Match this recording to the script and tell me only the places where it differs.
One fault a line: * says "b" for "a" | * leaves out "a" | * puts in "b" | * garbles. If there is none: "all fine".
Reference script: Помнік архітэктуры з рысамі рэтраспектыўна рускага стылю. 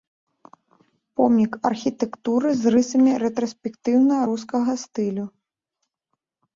all fine